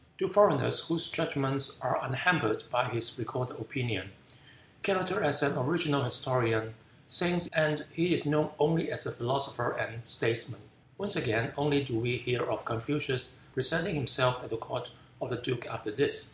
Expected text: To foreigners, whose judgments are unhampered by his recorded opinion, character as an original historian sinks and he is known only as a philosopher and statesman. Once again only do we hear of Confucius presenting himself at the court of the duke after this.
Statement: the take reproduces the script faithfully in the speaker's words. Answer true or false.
true